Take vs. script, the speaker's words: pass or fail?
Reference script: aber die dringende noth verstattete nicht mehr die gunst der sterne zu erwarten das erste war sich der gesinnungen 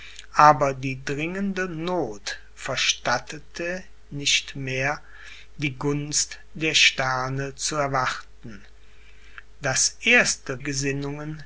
fail